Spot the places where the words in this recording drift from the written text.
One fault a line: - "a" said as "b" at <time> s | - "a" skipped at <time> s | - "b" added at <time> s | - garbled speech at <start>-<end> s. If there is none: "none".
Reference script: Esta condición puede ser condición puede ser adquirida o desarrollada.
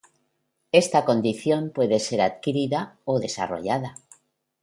- "condición puede ser" skipped at 2.2 s